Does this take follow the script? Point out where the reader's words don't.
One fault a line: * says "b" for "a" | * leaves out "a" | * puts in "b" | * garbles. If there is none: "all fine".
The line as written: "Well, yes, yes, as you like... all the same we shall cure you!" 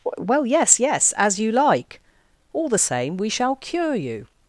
all fine